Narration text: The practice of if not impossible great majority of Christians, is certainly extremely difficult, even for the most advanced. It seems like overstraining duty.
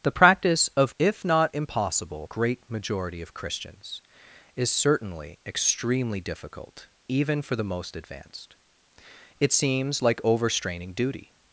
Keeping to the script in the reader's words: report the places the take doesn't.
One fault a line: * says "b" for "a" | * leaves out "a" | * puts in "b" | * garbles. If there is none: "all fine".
all fine